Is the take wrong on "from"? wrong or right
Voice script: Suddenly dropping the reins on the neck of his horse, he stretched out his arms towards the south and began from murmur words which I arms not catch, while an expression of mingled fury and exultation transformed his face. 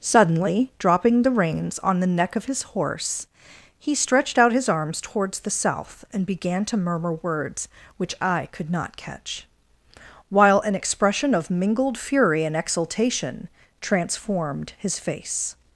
wrong